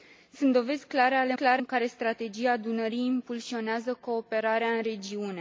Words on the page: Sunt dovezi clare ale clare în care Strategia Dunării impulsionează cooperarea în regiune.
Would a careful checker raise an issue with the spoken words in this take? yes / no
no